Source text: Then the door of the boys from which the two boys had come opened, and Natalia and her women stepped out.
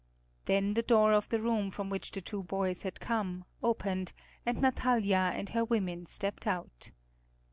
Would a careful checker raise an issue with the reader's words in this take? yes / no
yes